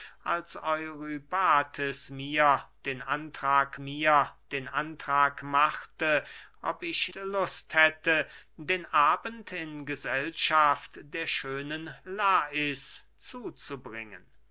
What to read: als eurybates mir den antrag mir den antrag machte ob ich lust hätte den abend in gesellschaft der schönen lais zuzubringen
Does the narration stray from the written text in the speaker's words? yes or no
no